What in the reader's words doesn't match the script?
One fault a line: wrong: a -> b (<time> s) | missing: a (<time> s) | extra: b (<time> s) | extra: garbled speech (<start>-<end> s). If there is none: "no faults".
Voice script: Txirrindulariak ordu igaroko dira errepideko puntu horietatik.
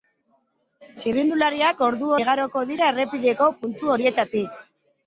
no faults